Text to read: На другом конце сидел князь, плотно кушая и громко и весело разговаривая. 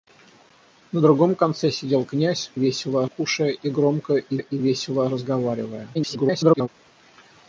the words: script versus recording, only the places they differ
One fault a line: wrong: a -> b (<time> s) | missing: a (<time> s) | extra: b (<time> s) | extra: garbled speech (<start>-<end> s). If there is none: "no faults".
wrong: плотно -> весело (2.5 s)
extra: и (4.4 s)
extra: garbled speech (5.9-6.7 s)